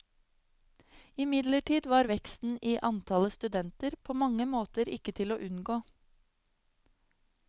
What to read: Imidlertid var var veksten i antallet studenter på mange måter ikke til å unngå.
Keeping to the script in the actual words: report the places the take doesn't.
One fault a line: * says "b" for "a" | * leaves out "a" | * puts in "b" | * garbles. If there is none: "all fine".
* leaves out "var"